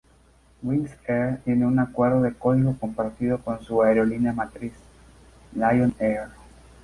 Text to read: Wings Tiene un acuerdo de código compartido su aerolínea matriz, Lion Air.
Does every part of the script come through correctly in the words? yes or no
no